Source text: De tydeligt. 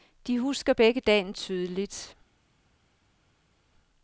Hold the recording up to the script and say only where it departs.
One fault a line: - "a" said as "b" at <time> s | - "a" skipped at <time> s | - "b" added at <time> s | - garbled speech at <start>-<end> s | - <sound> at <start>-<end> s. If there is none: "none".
- "husker begge dagen" added at 0.4 s